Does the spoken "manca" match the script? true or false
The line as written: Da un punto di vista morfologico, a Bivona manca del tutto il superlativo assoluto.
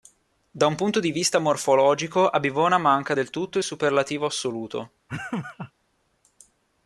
true